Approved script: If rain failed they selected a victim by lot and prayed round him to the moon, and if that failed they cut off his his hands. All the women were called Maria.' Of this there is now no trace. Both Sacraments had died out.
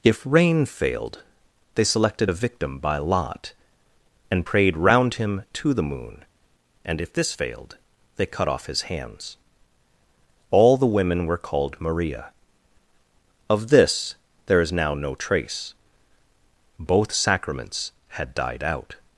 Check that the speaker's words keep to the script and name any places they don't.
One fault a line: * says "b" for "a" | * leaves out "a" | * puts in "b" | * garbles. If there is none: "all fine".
* says "this" for "that"
* leaves out "his"